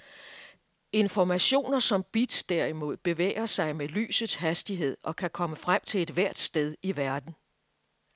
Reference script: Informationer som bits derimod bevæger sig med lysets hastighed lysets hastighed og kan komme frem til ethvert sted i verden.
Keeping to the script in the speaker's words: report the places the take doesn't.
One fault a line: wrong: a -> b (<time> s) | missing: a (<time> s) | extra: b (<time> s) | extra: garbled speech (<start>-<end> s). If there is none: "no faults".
missing: lysets hastighed (5.0 s)